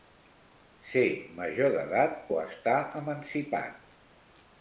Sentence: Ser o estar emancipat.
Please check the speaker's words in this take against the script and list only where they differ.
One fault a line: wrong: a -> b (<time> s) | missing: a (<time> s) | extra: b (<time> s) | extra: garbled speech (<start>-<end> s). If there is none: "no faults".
extra: major d'edat (1.4 s)